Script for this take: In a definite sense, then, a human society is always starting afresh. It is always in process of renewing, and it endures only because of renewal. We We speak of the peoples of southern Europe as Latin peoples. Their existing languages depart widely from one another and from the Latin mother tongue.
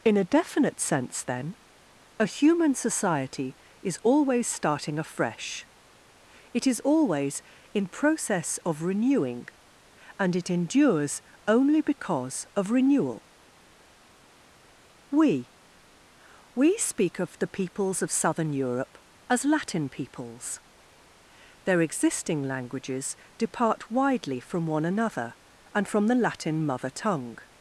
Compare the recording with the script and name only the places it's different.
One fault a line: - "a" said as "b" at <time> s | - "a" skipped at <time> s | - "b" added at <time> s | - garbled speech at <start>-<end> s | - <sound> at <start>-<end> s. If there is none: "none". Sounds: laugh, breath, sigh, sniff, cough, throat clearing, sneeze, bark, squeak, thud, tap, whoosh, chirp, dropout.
none